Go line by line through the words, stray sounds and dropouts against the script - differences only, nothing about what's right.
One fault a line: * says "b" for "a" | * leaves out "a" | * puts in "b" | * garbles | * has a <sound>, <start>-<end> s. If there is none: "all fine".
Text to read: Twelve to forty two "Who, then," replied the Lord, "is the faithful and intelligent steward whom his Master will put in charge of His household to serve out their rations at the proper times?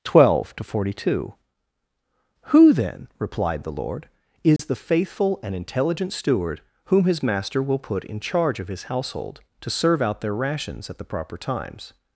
* has a dropout, 4.6-4.6 s